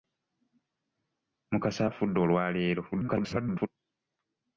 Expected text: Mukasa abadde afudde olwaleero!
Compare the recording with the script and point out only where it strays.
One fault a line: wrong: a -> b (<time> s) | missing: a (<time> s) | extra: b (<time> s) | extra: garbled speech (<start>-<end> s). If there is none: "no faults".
missing: abadde (1.8 s)
extra: garbled speech (2.9-3.7 s)